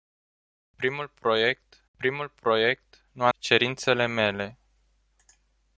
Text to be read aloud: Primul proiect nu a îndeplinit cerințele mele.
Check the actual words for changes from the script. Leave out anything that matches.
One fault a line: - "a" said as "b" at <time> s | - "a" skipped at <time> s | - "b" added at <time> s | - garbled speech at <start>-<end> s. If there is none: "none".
- "primul proiect" added at 2.0 s
- "îndeplinit" skipped at 3.3 s